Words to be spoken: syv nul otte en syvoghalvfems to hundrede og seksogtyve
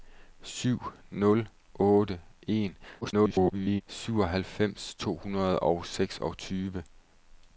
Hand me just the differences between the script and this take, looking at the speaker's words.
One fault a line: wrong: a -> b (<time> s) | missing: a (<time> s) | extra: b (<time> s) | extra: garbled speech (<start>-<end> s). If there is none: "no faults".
extra: garbled speech (3.0-3.8 s)